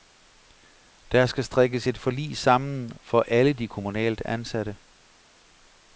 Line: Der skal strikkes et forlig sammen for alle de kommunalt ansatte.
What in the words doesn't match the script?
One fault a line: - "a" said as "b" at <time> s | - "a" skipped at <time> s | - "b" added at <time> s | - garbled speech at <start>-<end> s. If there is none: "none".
none